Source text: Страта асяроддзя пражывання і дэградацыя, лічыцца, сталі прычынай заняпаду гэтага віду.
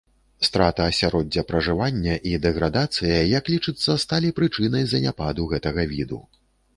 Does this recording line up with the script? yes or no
no